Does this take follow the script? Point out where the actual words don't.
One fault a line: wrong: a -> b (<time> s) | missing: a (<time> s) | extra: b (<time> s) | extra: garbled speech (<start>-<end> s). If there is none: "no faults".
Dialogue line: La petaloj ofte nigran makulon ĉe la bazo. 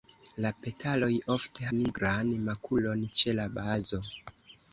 no faults